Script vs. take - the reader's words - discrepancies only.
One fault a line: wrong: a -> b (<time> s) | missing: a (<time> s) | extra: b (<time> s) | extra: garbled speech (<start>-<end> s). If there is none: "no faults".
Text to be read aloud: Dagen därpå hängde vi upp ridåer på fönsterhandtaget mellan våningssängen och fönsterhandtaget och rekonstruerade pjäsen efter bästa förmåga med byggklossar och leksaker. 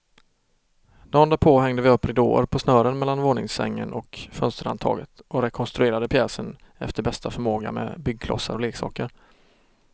wrong: fönsterhandtaget -> snören (2.6 s)